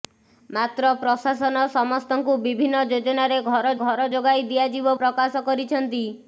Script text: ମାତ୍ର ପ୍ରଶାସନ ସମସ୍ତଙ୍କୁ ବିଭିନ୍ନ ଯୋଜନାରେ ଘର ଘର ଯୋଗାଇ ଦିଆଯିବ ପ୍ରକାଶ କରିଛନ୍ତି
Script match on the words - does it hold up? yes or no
yes